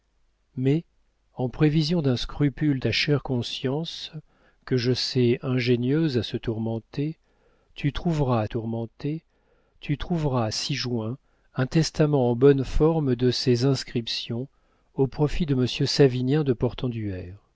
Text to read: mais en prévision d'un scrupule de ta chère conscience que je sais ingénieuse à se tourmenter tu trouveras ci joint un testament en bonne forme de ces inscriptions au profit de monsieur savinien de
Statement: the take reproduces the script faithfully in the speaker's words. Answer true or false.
false